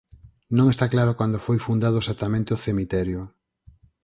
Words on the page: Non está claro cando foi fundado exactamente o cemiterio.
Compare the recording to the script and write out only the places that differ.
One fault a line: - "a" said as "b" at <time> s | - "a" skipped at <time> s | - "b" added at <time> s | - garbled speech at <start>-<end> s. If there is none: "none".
none